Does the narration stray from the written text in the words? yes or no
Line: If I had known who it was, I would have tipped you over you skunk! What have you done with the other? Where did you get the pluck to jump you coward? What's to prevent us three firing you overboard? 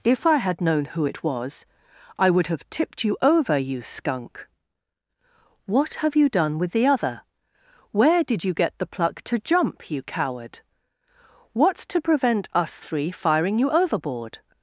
no